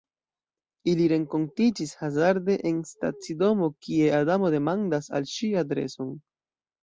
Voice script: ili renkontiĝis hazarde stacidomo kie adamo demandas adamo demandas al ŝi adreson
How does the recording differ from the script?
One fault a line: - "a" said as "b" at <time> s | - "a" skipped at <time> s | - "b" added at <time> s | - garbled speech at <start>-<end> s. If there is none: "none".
- "en" added at 2.7 s
- "adamo demandas" skipped at 5.1 s